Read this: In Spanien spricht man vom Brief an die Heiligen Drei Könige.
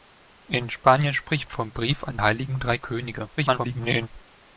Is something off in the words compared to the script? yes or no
yes